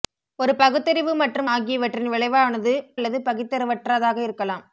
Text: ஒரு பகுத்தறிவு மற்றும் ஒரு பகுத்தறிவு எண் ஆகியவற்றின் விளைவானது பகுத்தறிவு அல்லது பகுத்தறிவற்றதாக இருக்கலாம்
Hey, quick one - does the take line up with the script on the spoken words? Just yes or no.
no